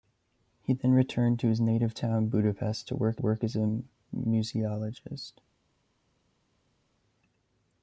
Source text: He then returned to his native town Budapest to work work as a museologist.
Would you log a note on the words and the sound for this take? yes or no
no